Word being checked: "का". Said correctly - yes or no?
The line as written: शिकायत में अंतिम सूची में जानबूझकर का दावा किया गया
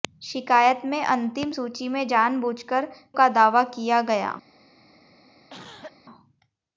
yes